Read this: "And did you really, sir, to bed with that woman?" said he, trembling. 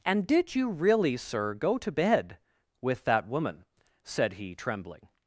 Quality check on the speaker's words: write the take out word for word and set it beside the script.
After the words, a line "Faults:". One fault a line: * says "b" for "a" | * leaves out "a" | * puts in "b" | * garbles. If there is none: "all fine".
"And did you really, sir, go to bed with that woman?" said he, trembling.
Faults:
* puts in "go"